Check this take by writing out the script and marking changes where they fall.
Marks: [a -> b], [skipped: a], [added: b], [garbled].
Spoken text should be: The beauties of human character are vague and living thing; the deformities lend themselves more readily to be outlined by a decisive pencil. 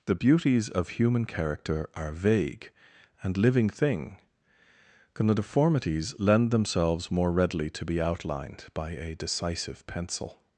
The beauties of human character are vague and living thing; the deformities lend themselves more readily to be outlined by a decisive pencil.